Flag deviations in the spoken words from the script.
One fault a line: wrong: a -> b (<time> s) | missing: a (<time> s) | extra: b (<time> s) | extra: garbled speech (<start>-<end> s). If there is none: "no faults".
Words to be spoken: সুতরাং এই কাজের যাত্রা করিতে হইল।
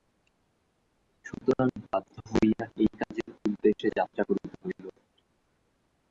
extra: বাধ্য হইয়া (1.8 s)
extra: উদ্দেশে (3.4 s)